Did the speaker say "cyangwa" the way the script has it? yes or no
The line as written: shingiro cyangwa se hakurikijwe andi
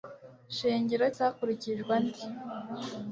no